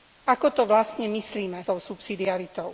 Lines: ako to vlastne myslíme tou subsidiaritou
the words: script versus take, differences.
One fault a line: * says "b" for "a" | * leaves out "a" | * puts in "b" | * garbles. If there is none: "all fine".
all fine